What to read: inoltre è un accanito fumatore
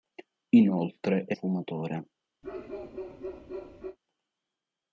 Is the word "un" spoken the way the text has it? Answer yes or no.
no